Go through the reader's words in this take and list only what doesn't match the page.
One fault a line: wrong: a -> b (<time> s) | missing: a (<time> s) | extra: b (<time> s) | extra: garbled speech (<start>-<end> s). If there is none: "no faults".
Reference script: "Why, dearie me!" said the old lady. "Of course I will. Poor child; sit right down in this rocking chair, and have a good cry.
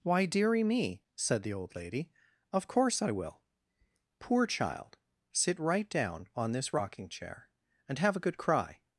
wrong: in -> on (6.3 s)